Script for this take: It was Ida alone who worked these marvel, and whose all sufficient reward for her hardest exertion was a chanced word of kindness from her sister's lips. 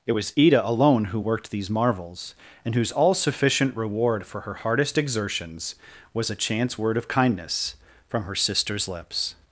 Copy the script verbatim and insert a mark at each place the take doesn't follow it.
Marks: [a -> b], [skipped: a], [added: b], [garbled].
It was Ida alone who worked these [marvel, -> marvels] and whose all sufficient reward for her hardest [exertion -> exertions] was a [chanced -> chance] word of kindness from her sister's lips.